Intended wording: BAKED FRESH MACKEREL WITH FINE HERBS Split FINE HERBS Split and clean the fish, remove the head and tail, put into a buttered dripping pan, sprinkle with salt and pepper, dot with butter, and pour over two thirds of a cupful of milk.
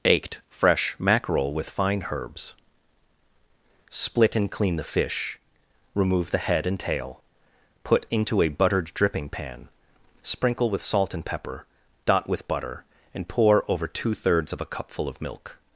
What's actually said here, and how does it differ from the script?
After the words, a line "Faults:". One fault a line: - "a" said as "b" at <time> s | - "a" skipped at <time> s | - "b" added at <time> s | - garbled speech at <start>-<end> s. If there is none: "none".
BAKED FRESH MACKEREL WITH FINE HERBS Split and clean the fish, remove the head and tail, put into a buttered dripping pan, sprinkle with salt and pepper, dot with butter, and pour over two thirds of a cupful of milk.
Faults:
- "FINE HERBS Split" skipped at 4.3 s